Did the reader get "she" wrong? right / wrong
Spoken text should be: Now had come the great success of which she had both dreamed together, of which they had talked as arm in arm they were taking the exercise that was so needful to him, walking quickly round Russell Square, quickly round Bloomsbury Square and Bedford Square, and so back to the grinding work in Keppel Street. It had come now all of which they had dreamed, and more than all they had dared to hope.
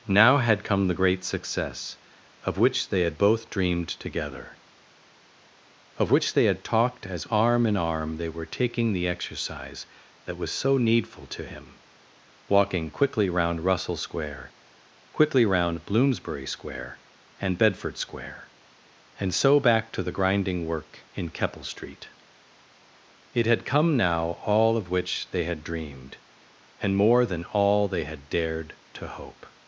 wrong